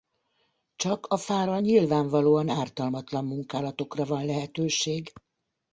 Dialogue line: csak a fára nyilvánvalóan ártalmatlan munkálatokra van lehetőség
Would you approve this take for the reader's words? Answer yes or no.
yes